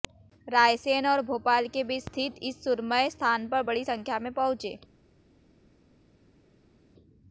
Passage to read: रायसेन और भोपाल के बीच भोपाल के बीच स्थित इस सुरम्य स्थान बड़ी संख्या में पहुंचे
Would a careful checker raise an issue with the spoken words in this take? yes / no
yes